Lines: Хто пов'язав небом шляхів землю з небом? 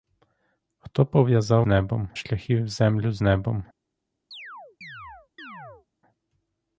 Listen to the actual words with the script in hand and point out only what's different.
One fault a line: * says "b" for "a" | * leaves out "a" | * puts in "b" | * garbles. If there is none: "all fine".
all fine